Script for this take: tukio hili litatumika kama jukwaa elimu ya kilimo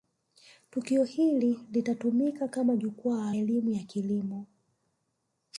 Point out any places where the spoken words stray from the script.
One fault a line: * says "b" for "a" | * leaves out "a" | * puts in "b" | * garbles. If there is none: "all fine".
all fine